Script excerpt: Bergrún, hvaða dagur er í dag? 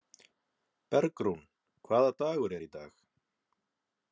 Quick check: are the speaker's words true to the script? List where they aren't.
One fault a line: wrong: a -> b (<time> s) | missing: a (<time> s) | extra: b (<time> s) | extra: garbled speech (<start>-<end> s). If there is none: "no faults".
no faults